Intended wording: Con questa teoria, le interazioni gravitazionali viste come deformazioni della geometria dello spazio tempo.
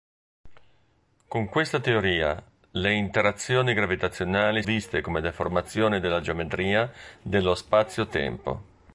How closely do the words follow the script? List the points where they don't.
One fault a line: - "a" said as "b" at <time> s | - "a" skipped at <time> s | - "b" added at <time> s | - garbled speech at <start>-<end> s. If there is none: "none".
none